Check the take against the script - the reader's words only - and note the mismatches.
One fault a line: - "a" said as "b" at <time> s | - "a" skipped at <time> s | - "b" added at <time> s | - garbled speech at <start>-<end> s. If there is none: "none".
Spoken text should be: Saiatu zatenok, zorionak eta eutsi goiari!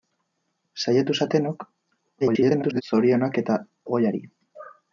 - garbled speech at 2.2-2.8 s
- "eutsi" skipped at 3.6 s